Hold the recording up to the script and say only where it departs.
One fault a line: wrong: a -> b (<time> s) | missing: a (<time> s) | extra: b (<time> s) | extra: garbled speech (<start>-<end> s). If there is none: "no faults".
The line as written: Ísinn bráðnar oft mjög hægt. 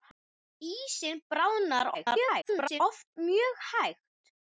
extra: garbled speech (1.9-2.8 s)